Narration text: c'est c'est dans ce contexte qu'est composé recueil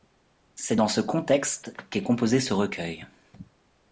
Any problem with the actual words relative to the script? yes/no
yes